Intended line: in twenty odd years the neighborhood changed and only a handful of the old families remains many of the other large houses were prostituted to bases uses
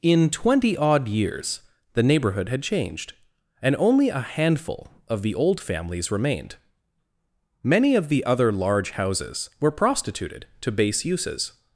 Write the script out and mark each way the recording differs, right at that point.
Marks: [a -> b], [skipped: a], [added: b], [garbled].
in twenty odd years the neighborhood [added: had] changed and only a handful of the old families [remains -> remained] many of the other large houses were prostituted to [bases -> base] uses